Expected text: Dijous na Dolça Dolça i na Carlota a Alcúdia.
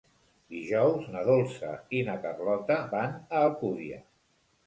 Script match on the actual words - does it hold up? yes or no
no